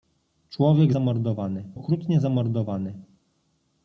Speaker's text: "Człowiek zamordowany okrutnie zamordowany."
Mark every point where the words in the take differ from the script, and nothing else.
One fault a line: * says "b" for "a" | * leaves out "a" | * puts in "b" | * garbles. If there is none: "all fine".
all fine